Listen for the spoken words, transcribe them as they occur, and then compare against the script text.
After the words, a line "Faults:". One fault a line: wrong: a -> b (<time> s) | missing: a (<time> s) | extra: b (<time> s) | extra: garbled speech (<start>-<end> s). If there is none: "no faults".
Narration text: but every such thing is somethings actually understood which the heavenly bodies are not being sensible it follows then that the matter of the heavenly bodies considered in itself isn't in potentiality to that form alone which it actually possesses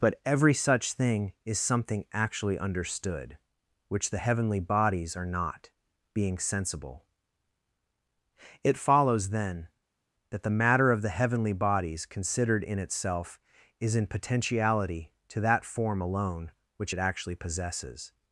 but every such thing is something actually understood which the heavenly bodies are not being sensible it follows then that the matter of the heavenly bodies considered in itself is in potentiality to that form alone which it actually possesses
Faults:
wrong: somethings -> something (1.6 s)
wrong: isn't -> is (13.8 s)